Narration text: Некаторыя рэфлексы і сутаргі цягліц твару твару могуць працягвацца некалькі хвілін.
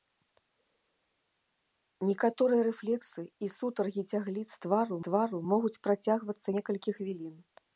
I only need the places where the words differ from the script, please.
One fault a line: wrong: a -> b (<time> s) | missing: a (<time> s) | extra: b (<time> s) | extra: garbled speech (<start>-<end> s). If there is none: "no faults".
no faults